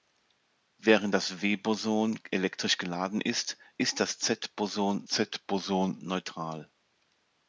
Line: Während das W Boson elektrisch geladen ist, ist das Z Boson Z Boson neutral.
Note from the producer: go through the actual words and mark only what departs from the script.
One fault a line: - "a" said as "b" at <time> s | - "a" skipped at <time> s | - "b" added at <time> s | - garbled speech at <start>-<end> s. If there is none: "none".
none